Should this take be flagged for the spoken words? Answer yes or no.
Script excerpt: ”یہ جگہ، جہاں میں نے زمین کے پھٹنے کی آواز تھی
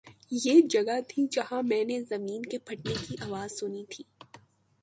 yes